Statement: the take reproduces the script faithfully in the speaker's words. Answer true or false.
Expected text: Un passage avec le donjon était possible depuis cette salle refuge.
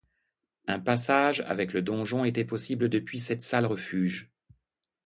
true